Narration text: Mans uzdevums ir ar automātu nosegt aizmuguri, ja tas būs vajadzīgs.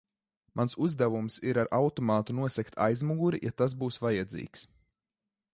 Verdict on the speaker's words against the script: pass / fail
pass